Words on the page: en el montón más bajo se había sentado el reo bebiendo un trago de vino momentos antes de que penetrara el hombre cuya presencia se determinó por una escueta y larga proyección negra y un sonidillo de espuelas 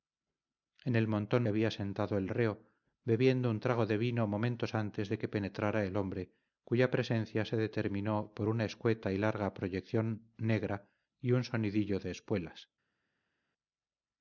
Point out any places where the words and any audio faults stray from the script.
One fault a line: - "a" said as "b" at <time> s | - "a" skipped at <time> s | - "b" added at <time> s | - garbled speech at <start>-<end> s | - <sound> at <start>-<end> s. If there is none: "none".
- "más bajo se" skipped at 1.4 s